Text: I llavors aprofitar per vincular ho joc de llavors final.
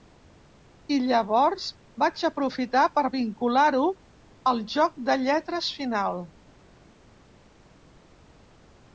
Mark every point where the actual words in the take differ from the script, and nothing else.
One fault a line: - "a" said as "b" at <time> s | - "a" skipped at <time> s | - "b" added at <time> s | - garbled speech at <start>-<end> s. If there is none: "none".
- "vaig" added at 2.0 s
- "al" added at 4.5 s
- "llavors" said as "lletres" at 5.2 s